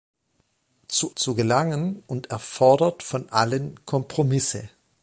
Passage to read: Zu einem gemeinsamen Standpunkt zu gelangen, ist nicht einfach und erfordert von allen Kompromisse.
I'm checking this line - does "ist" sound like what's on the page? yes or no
no